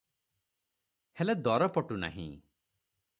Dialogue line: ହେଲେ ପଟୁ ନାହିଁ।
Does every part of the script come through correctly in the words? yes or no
no